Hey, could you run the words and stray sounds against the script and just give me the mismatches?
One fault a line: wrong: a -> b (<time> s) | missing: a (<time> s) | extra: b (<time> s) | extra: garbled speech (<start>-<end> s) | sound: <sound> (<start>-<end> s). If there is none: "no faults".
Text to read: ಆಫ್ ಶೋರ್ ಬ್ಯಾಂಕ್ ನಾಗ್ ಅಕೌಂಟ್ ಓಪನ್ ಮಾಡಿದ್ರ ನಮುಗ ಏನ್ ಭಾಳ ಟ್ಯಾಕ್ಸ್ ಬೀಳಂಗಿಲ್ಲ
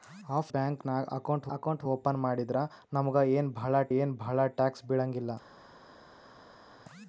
missing: ಶೋರ್ (0.5 s)
extra: ಅಕೌಂಟ್ (1.5 s)
extra: ಏನ್ ಭಾಳ (4.0 s)